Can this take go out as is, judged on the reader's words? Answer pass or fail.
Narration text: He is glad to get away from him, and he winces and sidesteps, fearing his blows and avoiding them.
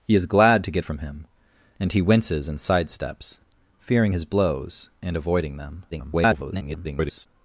fail